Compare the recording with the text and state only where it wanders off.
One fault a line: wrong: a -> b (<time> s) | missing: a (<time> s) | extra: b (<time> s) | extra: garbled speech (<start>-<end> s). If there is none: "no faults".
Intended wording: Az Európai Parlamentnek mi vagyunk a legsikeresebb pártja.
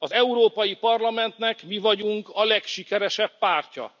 no faults